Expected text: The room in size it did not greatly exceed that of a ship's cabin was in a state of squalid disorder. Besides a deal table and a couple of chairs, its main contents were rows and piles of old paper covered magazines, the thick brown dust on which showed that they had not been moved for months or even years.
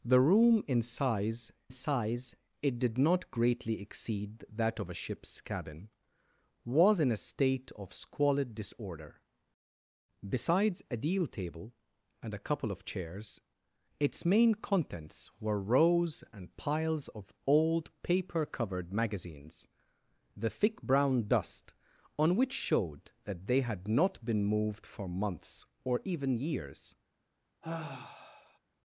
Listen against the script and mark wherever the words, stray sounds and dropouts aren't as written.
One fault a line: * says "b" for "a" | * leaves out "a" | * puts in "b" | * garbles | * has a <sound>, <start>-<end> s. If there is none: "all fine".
* puts in "size"
* has a sigh, 27.6-28.6 s